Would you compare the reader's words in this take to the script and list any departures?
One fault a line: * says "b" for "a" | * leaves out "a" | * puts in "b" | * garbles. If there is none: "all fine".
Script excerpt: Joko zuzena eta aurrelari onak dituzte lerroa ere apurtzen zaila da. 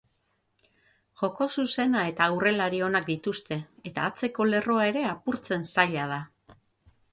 * puts in "eta atzeko"